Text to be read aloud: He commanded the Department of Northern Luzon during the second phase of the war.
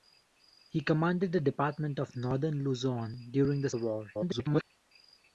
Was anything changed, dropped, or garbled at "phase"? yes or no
yes